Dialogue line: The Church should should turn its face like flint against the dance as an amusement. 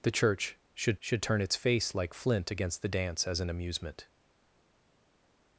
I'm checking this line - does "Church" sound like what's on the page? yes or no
yes